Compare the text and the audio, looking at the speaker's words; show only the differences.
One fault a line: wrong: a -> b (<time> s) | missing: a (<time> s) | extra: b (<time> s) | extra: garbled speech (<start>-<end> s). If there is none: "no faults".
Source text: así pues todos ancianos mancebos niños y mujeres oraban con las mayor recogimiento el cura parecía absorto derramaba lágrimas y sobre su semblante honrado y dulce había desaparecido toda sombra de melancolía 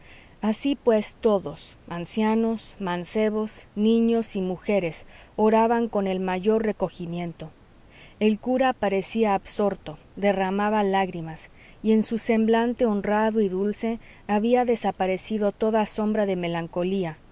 wrong: las -> el (6.1 s)
wrong: sobre -> en (11.9 s)